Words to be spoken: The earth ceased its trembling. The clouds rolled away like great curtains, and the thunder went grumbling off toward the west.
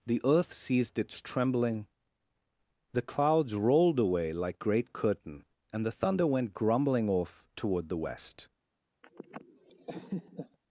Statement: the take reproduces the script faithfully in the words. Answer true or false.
false